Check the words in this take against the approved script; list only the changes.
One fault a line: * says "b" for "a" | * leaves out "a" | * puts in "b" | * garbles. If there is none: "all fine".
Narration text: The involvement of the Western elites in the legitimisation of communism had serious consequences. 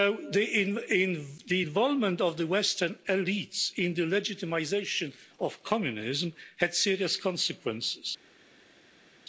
all fine